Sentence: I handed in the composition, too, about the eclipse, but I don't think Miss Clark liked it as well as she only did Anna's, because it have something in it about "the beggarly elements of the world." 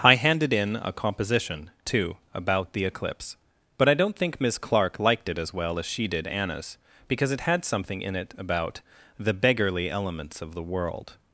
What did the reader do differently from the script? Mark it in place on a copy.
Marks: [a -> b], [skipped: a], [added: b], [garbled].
I handed in [the -> a] composition, too, about the eclipse, but I don't think Miss Clark liked it as well as she [skipped: only] did Anna's, because it [have -> had] something in it about "the beggarly elements of the world."